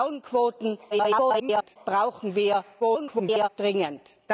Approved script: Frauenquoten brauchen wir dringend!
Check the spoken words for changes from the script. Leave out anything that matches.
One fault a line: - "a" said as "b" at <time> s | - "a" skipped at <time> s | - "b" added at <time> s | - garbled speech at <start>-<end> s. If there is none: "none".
- garbled speech at 0.9-1.8 s
- garbled speech at 2.8-3.5 s